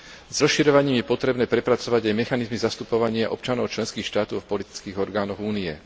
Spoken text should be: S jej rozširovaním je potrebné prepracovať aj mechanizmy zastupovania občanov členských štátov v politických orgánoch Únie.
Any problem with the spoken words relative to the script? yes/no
yes